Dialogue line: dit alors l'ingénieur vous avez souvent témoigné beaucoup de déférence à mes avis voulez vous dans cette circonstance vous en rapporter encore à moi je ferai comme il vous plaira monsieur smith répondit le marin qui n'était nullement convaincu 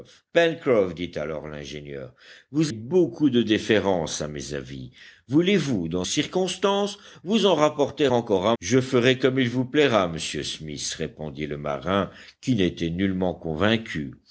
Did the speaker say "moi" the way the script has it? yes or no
no